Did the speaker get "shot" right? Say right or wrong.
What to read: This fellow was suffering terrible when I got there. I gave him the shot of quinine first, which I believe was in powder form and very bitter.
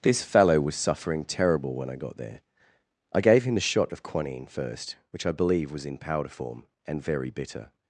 right